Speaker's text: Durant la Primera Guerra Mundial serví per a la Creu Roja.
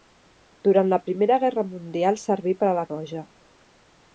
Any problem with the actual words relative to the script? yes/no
yes